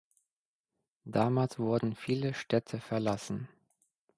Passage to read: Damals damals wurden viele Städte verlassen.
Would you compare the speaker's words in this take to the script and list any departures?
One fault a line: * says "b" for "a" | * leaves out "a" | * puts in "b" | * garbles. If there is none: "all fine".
* leaves out "damals"